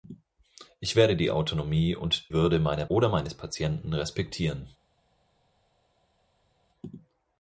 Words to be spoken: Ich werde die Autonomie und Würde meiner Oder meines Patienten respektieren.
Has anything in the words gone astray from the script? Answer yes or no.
no